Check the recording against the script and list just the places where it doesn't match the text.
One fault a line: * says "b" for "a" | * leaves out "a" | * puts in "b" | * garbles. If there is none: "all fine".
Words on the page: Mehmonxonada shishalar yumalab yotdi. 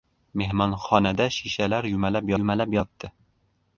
* puts in "yumalab"